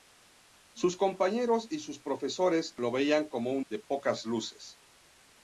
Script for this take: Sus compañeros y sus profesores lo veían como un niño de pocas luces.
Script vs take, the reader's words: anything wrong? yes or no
yes